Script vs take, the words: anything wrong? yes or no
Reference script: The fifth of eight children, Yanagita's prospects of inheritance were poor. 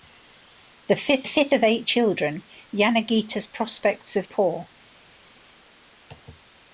yes